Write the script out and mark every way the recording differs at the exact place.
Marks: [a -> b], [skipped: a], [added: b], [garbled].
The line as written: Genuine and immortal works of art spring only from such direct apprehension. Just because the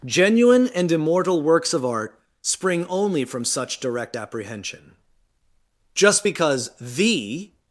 Genuine and immortal works of art spring only from such direct apprehension. Just because the